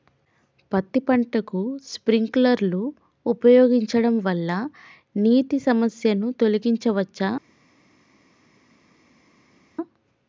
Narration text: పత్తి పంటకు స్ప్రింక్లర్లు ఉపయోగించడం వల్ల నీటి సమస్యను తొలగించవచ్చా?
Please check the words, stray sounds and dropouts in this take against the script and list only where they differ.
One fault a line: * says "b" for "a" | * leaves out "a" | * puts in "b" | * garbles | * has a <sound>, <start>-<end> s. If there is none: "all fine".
all fine